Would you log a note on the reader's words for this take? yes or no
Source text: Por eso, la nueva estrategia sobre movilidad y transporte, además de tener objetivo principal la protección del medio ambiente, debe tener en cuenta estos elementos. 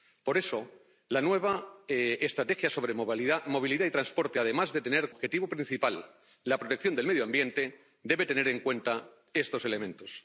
no